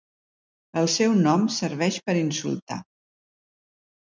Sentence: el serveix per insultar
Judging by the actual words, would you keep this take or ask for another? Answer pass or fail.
fail